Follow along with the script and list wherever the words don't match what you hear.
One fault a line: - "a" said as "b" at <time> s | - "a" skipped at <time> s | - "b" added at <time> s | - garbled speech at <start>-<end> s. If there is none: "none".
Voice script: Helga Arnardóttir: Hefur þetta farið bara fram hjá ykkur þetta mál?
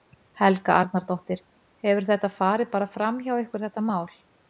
none